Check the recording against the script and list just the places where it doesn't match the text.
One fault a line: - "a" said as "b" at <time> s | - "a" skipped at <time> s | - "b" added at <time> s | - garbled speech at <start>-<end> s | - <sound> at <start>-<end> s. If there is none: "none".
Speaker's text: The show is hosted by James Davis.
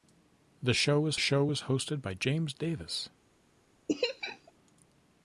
- "show is" added at 1.2 s
- laugh at 3.9-4.5 s